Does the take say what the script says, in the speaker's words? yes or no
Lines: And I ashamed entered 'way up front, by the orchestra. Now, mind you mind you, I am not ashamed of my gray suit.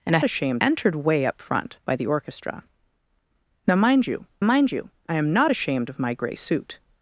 yes